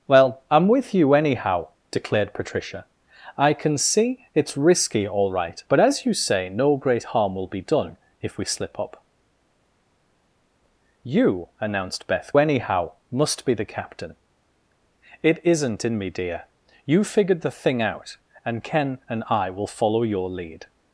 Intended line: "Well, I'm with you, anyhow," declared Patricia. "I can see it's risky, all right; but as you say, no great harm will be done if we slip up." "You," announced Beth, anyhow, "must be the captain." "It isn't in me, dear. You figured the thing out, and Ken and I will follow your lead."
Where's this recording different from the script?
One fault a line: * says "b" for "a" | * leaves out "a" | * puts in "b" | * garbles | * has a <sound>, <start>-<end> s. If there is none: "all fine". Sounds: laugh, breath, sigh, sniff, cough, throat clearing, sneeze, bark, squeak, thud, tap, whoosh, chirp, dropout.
all fine